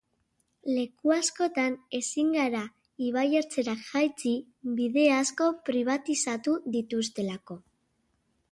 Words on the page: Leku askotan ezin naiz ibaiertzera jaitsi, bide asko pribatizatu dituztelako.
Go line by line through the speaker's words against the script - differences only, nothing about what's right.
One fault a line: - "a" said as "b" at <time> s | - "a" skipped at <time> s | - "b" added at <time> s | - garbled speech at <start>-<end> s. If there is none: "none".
- "naiz" said as "gara" at 2.4 s